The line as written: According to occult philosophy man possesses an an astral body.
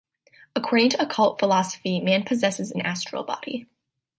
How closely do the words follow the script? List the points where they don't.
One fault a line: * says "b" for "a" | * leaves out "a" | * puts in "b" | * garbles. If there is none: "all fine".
* leaves out "an"